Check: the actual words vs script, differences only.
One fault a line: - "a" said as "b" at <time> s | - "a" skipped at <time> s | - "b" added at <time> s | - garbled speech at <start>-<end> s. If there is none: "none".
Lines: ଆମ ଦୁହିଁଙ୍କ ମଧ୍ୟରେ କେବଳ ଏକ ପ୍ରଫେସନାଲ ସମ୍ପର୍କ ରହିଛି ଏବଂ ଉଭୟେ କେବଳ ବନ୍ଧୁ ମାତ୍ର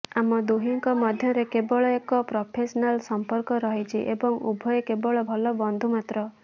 - "ଭଲ" added at 5.3 s